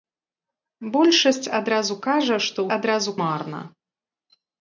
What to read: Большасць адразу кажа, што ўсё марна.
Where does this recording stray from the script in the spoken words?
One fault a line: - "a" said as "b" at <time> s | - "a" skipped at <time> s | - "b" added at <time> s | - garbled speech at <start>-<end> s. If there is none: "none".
- "ўсё" said as "адразу" at 2.8 s